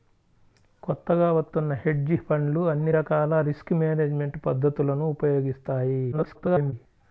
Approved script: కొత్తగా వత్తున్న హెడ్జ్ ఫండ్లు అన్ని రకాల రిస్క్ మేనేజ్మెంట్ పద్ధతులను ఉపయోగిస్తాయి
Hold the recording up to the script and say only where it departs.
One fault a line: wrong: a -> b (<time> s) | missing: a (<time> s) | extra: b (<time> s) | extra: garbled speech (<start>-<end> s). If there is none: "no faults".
extra: garbled speech (6.1-6.7 s)